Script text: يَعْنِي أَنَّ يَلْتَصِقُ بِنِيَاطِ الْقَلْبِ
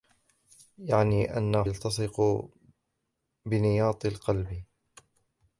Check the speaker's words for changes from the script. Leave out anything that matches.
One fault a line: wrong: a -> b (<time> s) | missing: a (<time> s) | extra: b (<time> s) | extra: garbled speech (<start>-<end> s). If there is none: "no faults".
no faults